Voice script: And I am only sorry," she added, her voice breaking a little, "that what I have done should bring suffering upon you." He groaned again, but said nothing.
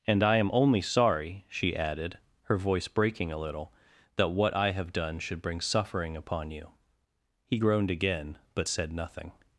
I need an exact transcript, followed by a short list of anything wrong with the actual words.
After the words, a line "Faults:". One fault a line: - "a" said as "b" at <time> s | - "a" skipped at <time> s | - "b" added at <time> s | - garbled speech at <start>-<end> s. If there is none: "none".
And I am only sorry," she added, her voice breaking a little, "that what I have done should bring suffering upon you." He groaned again, but said nothing.
Faults:
none